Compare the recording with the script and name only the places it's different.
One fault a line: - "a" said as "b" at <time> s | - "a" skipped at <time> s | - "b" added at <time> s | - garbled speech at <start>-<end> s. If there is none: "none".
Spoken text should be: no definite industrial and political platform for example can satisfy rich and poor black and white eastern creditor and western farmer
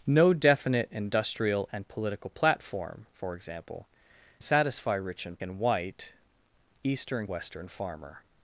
- "can" skipped at 3.9 s
- "poor black" skipped at 5.4 s
- "creditor and" skipped at 7.3 s